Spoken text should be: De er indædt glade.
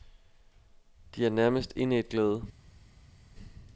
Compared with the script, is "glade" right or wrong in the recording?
right